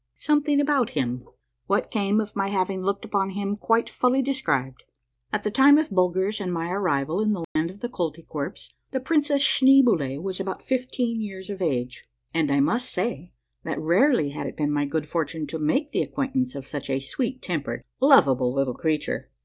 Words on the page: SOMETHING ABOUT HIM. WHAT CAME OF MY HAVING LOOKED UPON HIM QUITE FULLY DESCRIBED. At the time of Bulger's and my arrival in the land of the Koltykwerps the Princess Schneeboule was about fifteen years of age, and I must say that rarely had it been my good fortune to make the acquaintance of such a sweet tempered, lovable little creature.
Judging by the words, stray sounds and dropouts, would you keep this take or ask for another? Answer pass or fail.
fail